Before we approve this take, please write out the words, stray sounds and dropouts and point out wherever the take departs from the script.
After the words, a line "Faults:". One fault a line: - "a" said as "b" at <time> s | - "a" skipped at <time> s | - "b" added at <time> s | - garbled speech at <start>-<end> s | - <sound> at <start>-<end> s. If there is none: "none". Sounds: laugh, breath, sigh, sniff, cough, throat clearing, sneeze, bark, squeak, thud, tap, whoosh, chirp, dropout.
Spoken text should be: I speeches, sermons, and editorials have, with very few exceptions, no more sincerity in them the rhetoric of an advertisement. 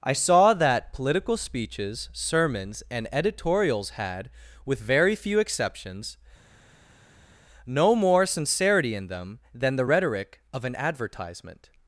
I saw that political speeches, sermons, and editorials had, with very few exceptions, no more sincerity in them than the rhetoric of an advertisement.
Faults:
- "saw that political" added at 0.1 s
- "have" said as "had" at 3.9 s
- "than" added at 9.5 s